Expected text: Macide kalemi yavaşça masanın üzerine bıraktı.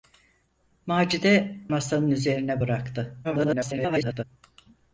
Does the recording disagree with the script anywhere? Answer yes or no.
yes